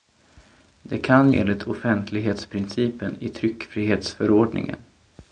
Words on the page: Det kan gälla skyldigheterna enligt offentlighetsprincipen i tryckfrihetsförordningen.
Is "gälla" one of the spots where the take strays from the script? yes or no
yes